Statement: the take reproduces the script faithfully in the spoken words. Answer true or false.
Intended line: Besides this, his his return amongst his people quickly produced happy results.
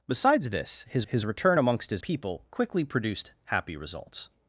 true